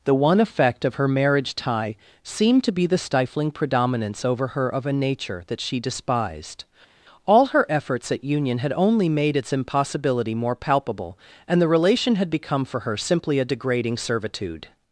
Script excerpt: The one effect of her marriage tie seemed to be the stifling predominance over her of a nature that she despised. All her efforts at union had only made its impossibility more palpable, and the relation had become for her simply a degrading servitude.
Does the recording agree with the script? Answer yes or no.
yes